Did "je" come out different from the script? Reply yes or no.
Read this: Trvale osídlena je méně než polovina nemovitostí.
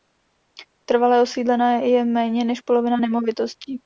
no